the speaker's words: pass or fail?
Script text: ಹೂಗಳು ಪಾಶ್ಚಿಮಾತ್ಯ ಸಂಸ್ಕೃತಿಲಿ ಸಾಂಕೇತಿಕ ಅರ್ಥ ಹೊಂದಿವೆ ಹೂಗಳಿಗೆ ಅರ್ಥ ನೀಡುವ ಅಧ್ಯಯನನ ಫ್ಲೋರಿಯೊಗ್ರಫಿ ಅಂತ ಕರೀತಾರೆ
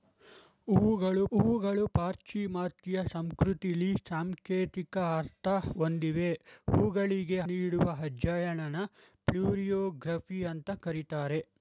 fail